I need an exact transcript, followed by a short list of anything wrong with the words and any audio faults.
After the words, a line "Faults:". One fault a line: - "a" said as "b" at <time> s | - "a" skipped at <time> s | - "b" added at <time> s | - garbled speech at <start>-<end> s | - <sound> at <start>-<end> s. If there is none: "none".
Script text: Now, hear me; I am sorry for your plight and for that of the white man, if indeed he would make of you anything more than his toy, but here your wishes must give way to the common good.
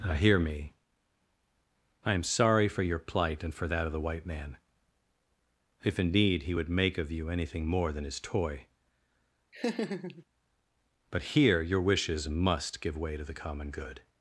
Now, hear me; I am sorry for your plight and for that of the white man, if indeed he would make of you anything more than his toy, but here your wishes must give way to the common good.
Faults:
- laugh at 9.5-10.2 s